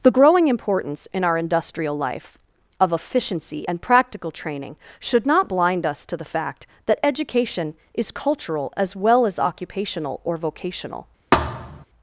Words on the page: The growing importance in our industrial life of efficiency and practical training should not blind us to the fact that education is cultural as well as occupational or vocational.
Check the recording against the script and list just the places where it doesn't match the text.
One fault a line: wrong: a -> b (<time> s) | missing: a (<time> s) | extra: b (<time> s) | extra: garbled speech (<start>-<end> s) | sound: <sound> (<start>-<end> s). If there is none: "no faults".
sound: thud (11.3-11.9 s)